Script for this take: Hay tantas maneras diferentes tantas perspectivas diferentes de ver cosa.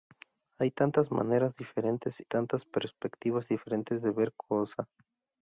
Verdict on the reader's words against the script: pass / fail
pass